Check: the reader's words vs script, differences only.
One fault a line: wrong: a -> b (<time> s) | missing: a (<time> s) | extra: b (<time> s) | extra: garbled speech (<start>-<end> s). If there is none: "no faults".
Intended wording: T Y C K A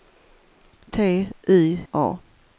missing: C K (1.9 s)